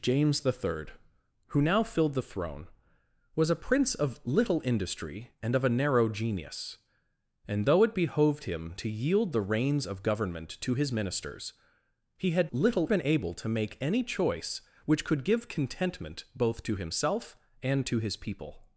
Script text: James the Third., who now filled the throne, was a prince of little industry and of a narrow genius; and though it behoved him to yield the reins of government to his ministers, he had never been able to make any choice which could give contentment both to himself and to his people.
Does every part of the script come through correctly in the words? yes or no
no